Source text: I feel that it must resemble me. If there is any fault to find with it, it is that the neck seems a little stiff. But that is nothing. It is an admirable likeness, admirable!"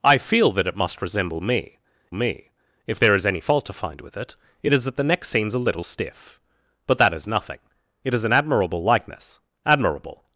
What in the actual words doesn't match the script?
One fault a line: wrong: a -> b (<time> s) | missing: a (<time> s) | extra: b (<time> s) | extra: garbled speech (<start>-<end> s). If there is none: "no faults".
extra: me (2.1 s)